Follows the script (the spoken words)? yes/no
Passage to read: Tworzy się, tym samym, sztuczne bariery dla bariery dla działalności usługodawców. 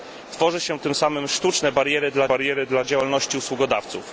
yes